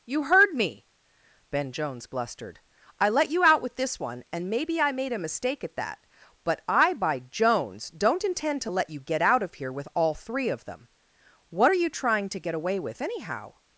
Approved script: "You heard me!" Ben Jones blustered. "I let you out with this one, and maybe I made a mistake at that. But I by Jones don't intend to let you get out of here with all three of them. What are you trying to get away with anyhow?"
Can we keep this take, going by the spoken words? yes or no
yes